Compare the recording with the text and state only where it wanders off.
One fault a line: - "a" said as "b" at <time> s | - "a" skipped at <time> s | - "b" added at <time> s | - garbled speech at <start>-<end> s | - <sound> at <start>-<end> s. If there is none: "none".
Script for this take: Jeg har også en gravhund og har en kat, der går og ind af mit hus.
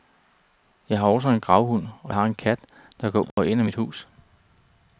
- dropout at 3.3-3.4 s